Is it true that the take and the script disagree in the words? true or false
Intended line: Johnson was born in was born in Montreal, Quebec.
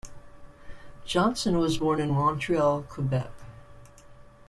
true